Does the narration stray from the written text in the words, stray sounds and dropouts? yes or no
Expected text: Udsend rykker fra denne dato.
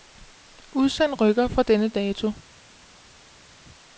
no